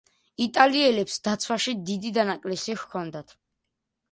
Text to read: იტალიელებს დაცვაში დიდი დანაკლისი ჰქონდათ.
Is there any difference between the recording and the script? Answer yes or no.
no